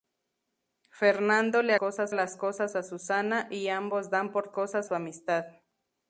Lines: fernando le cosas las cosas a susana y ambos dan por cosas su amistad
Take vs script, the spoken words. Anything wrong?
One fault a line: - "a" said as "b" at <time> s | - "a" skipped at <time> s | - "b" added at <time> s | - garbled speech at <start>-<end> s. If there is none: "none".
none